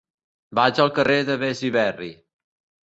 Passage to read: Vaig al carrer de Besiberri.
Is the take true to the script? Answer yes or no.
yes